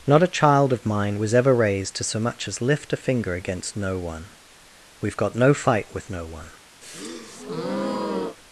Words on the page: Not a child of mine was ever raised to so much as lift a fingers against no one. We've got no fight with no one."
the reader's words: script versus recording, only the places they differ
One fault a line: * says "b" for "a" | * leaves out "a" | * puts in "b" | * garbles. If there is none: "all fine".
* says "finger" for "fingers"